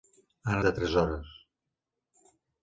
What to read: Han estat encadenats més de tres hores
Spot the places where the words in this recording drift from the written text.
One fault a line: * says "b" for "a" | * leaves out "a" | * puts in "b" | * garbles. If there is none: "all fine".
* leaves out "estat encadenats més"